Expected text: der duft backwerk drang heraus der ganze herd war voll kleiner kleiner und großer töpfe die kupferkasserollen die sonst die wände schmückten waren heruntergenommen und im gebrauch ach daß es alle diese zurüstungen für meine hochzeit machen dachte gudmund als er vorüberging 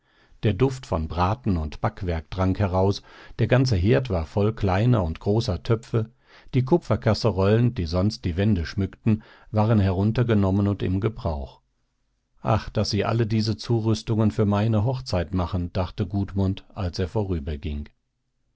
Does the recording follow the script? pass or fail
fail